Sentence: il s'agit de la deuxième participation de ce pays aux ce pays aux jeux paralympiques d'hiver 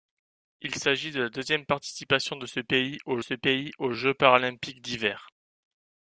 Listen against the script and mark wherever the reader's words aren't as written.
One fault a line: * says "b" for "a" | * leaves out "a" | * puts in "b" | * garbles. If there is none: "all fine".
all fine